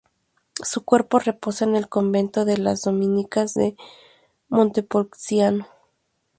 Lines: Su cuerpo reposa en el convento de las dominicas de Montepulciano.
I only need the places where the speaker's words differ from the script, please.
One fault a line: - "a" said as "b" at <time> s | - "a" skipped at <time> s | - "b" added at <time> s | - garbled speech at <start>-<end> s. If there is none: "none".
none